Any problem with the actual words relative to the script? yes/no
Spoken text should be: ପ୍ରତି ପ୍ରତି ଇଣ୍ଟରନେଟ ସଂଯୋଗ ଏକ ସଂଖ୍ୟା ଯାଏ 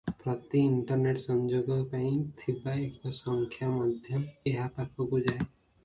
yes